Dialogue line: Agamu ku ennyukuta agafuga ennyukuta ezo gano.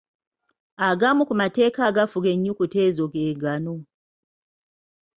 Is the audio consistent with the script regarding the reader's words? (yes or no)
no